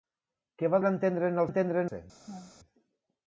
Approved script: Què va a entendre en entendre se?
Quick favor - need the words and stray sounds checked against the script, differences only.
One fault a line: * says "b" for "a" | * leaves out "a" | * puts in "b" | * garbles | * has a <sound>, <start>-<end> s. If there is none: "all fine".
* has a laugh, 2.3-2.5 s